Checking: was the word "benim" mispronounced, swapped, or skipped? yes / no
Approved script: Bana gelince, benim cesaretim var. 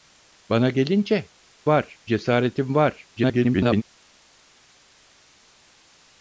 yes